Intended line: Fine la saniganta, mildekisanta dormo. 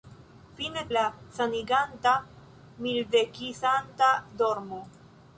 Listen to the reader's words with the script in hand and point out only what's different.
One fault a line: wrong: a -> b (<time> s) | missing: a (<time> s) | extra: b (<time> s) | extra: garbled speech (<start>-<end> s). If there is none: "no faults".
no faults